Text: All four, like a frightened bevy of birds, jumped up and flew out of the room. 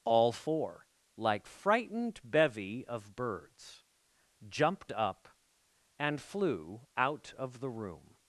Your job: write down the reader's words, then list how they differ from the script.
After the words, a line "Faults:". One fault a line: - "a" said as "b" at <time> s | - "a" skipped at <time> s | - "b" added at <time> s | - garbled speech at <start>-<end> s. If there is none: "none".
All four, like frightened bevy of birds, jumped up and flew out of the room.
Faults:
- "a" skipped at 1.4 s